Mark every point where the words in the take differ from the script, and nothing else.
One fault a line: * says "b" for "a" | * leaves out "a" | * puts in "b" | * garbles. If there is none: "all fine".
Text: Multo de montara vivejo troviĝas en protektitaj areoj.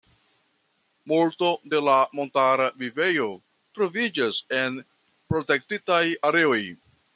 * puts in "la"